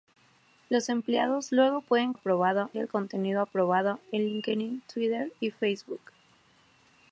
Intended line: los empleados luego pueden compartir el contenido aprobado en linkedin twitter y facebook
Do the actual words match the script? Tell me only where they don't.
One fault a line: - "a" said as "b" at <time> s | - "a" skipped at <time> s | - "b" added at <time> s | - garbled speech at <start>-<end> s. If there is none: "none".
- "compartir" said as "aprobado" at 2.1 s